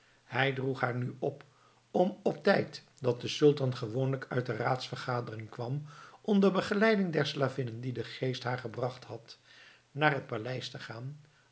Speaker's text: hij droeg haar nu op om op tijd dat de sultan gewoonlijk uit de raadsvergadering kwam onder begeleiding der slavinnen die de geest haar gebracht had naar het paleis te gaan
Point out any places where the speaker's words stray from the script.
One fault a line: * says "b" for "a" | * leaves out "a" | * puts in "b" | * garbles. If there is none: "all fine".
all fine